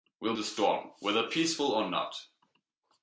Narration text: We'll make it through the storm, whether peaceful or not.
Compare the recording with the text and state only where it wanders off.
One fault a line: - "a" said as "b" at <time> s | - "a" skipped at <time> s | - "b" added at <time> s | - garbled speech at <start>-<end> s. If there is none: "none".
- "make it through" skipped at 0.3 s